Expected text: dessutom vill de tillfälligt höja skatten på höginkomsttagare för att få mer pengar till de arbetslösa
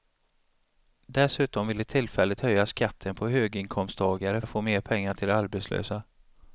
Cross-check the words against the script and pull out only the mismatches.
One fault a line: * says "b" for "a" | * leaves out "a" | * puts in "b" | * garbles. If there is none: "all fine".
* leaves out "för"